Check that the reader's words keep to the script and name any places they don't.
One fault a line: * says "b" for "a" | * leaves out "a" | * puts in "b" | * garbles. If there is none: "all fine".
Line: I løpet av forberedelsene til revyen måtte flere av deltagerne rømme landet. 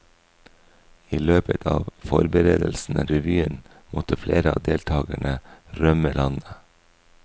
* leaves out "til"